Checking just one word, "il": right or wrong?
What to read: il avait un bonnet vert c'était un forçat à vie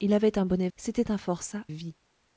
right